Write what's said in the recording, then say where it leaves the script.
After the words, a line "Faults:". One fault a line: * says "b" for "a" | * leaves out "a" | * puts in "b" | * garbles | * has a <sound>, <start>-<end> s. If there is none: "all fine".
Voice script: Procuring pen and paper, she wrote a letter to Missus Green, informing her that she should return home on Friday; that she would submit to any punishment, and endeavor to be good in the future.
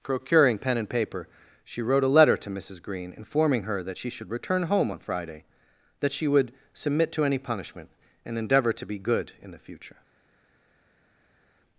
Procuring pen and paper, she wrote a letter to Missus Green, informing her that she should return home on Friday; that she would submit to any punishment, and endeavor to be good in the future.
Faults:
all fine